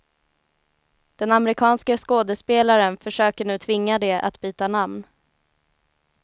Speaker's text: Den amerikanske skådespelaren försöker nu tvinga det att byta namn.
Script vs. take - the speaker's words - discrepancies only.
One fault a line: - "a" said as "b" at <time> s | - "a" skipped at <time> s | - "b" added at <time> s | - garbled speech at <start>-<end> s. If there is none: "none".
none